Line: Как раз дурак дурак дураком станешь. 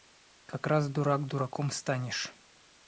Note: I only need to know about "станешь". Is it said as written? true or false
true